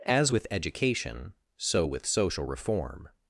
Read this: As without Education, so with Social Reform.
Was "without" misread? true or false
true